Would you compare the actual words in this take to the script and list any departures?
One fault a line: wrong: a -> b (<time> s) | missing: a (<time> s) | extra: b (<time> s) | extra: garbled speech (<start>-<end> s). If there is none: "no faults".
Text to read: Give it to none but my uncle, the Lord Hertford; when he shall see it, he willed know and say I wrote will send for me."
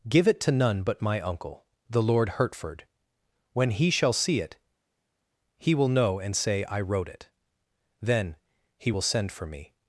wrong: willed -> will (5.7 s)
extra: it Then he (7.1 s)